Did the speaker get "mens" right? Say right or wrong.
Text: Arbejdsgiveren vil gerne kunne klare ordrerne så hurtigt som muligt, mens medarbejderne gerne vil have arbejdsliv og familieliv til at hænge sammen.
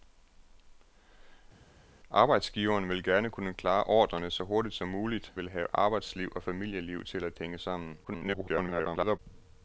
wrong